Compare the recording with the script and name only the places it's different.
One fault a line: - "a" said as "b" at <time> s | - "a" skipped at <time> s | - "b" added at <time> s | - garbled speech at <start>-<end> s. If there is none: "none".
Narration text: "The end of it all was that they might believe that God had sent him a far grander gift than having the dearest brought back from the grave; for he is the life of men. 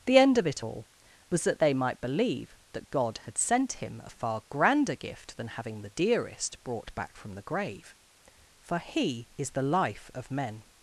none